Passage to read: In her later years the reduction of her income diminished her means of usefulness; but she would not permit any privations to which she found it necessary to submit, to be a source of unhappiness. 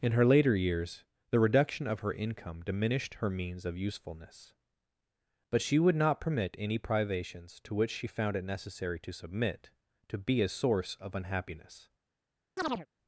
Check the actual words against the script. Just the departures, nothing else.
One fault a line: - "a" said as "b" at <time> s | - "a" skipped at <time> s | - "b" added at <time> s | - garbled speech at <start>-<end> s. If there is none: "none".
none